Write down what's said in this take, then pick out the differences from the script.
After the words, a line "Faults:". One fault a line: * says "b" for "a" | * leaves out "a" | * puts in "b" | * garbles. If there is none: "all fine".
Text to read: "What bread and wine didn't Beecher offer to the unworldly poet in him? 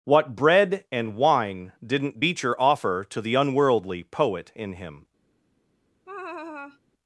"What bread and wine didn't Beecher offer to the unworldly poet in him?
Faults:
all fine